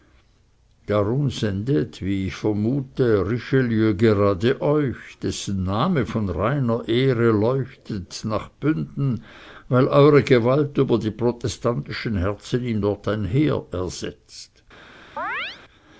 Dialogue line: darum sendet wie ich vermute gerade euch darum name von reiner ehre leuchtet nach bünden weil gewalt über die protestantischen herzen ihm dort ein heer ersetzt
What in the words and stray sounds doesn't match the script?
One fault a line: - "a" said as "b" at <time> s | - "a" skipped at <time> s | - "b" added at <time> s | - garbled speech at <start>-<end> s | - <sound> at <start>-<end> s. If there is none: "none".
- "richelieu" added at 3.3 s
- "darum" said as "dessen" at 5.2 s
- "eure" added at 9.9 s
- chirp at 15.2-15.6 s